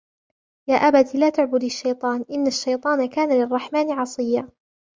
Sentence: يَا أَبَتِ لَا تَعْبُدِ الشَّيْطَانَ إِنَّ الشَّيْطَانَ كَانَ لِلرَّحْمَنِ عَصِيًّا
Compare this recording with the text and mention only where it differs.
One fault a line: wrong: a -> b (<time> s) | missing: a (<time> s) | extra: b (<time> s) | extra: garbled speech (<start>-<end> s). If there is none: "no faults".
no faults